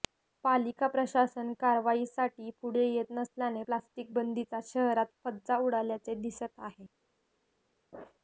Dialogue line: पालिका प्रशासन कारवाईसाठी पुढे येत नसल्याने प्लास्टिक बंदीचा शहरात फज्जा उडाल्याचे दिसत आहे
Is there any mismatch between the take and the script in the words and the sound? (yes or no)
no